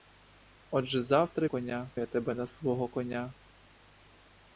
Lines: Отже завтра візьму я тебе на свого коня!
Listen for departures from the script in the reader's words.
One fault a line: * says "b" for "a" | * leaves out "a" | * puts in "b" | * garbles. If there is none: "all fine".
* says "коня" for "візьму"